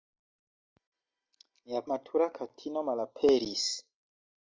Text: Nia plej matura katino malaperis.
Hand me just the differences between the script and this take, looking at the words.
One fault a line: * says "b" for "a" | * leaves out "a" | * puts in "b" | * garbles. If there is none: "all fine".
* leaves out "plej"